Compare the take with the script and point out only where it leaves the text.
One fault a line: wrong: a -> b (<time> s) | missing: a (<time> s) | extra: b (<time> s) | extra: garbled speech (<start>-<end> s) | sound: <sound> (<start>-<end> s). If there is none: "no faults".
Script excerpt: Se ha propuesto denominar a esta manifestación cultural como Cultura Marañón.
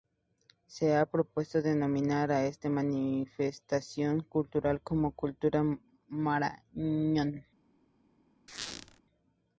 sound: squeak (8.5-9.0 s)